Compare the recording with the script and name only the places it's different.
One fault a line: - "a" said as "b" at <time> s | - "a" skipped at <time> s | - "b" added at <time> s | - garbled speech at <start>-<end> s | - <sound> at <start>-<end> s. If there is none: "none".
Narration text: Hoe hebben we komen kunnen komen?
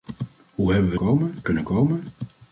none